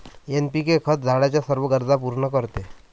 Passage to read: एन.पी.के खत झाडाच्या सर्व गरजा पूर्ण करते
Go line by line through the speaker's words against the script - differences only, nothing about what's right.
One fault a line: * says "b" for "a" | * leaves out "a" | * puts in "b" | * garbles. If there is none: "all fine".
all fine